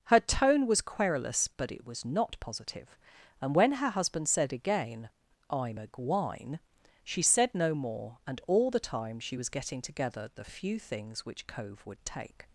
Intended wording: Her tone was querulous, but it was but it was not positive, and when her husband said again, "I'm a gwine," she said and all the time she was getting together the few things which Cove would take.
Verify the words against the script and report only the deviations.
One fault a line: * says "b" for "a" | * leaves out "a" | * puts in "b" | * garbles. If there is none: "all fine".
* leaves out "but it was"
* puts in "no more"